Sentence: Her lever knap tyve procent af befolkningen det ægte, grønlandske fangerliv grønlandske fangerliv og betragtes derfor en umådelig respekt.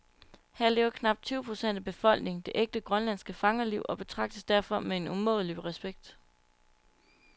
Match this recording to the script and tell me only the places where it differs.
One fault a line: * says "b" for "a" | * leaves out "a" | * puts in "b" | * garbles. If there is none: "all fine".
* leaves out "grønlandske fangerliv"
* puts in "med"